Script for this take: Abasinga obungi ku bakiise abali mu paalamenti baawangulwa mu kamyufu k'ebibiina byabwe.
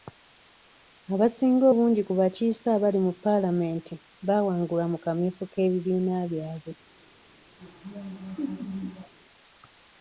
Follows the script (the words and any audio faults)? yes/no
no